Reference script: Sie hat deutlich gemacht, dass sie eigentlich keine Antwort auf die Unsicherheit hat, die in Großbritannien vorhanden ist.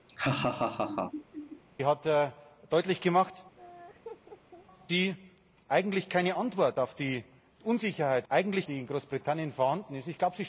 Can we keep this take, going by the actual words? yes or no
no